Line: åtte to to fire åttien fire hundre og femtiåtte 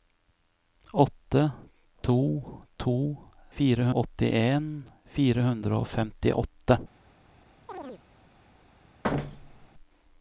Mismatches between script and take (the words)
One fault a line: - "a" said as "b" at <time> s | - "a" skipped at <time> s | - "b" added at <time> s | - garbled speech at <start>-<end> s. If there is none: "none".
none